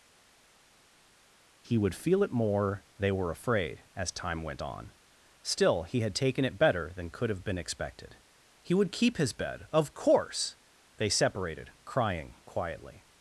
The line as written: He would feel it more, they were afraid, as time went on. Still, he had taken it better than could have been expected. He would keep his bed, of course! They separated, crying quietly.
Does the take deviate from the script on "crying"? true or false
false